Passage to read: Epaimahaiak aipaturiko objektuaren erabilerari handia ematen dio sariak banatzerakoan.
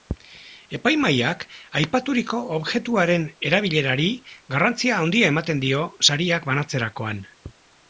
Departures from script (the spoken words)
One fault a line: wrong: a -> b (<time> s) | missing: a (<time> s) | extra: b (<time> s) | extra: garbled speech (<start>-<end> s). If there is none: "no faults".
extra: garrantzia (4.6 s)